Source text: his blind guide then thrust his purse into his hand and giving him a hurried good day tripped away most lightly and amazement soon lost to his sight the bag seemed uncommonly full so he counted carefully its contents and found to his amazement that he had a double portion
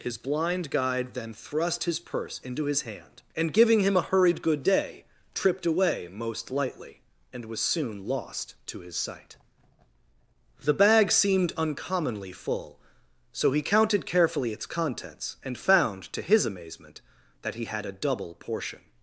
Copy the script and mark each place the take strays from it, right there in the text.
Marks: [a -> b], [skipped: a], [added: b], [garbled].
his blind guide then thrust his purse into his hand and giving him a hurried good day tripped away most lightly and [amazement -> was] soon lost to his sight the bag seemed uncommonly full so he counted carefully its contents and found to his amazement that he had a double portion